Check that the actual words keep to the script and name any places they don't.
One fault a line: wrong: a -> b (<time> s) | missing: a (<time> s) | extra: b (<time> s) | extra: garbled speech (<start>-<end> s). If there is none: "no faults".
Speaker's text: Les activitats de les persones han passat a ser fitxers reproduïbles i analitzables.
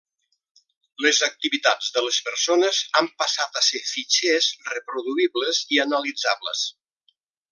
no faults